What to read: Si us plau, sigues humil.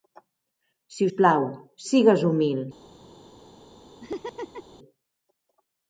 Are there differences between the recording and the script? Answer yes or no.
no